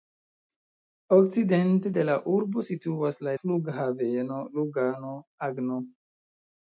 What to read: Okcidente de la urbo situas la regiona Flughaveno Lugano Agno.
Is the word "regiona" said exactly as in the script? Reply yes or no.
no